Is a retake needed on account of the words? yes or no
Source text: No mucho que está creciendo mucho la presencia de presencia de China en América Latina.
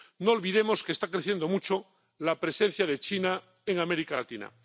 yes